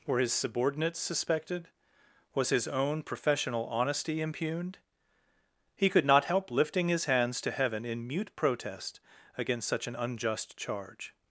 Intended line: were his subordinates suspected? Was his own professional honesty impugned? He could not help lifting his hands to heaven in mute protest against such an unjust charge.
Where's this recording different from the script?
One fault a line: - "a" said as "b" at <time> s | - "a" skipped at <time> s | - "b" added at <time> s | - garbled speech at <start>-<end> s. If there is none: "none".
none